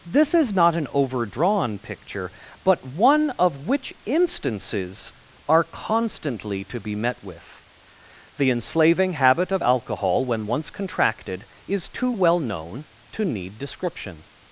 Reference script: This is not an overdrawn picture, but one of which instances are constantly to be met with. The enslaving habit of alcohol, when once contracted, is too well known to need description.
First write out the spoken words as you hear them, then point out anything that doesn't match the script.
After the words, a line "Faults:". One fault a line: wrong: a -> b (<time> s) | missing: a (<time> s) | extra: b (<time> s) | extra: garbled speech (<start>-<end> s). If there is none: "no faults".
This is not an overdrawn picture, but one of which instances are constantly to be met with. The enslaving habit of alcohol, when once contracted, is too well known to need description.
Faults:
no faults